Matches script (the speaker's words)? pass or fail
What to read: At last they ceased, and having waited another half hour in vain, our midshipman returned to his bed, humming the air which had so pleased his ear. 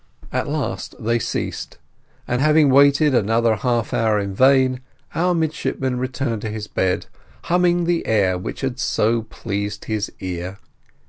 pass